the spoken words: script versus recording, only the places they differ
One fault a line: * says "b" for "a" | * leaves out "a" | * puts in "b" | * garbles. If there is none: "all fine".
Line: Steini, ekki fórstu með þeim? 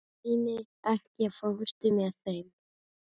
all fine